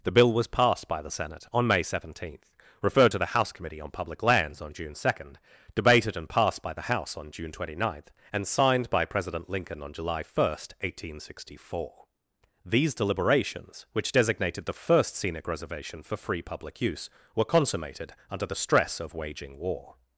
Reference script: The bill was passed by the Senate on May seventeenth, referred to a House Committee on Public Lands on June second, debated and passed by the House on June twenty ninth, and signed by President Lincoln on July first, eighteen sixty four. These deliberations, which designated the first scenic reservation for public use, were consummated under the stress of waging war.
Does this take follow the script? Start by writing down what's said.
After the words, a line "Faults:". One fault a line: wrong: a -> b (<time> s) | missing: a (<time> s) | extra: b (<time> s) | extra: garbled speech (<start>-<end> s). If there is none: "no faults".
The bill was passed by the Senate on May seventeenth, referred to the House Committee on Public Lands on June second, debated and passed by the House on June twenty ninth, and signed by President Lincoln on July first, eighteen sixty four. These deliberations, which designated the first scenic reservation for free public use, were consummated under the stress of waging war.
Faults:
wrong: a -> the (3.2 s)
extra: free (16.2 s)